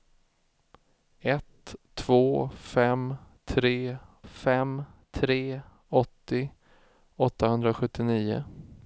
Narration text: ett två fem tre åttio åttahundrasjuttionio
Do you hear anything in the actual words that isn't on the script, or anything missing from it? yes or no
yes